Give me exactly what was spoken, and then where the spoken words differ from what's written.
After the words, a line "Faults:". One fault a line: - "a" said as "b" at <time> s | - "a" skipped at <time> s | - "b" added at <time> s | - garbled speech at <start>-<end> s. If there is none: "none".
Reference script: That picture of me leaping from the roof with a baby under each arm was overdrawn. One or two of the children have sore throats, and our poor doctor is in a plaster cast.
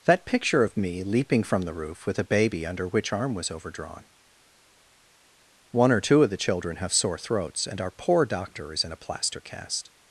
That picture of me leaping from the roof with a baby under which arm was overdrawn. One or two of the children have sore throats, and our poor doctor is in a plaster cast.
Faults:
- "each" said as "which" at 2.9 s